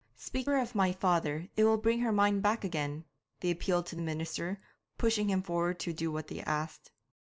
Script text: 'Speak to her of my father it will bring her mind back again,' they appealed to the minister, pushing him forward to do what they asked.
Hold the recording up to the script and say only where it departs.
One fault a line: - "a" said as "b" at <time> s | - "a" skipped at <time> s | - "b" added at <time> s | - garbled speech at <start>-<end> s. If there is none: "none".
- "to" skipped at 0.5 s